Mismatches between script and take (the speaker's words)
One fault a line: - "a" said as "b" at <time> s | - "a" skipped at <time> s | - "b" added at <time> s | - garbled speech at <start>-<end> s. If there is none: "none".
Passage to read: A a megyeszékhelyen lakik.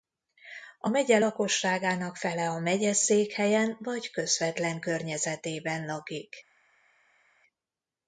- "megye lakosságának fele" added at 0.9 s
- "vagy közvetlen környezetében" added at 3.8 s